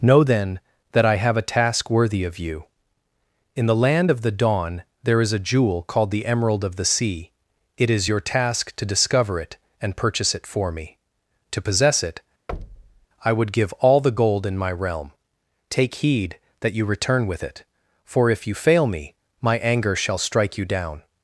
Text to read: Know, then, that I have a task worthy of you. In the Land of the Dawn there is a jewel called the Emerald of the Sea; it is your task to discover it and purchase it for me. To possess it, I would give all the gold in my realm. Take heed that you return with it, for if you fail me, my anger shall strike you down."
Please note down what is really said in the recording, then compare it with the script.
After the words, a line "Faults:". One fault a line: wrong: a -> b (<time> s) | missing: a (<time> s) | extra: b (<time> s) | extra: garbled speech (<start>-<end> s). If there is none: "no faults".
Know, then, that I have a task worthy of you. In the Land of the Dawn there is a jewel called the Emerald of the Sea; it is your task to discover it and purchase it for me. To possess it, I would give all the gold in my realm. Take heed that you return with it, for if you fail me, my anger shall strike you down."
Faults:
no faults